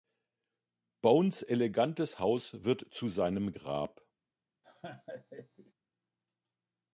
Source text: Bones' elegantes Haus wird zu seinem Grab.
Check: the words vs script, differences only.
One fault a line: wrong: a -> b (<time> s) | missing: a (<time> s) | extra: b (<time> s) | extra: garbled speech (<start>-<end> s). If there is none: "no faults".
no faults